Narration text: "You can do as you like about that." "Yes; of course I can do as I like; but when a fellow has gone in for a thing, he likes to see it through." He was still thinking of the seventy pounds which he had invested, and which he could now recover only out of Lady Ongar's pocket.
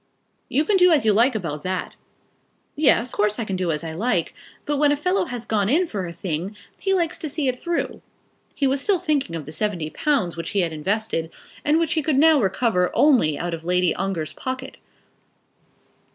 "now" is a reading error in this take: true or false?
false